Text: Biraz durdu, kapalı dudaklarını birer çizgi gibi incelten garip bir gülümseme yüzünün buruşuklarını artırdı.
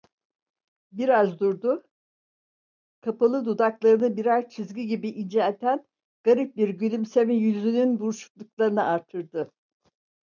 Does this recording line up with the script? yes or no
yes